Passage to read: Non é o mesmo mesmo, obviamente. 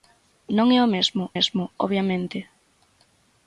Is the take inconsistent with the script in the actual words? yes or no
no